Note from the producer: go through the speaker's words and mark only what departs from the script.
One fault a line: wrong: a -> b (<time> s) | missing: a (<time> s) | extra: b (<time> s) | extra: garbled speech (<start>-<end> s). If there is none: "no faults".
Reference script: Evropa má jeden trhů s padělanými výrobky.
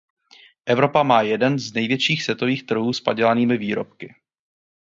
extra: z největších světových (1.6 s)